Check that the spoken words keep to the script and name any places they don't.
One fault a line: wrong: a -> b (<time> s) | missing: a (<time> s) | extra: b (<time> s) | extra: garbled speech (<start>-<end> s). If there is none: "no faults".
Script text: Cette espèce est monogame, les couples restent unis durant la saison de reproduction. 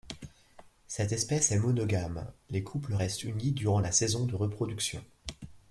no faults